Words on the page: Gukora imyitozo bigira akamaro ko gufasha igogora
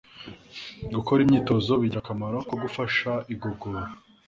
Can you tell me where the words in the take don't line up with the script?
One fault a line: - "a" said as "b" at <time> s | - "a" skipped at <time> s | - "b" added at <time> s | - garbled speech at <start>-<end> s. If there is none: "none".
none